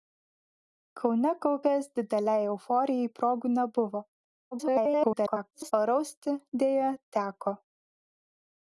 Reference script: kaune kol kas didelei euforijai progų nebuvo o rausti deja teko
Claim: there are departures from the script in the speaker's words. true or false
true